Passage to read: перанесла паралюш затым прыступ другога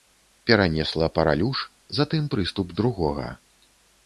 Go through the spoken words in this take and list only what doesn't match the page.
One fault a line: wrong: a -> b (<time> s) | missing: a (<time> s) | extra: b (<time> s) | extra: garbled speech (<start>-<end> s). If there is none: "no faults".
no faults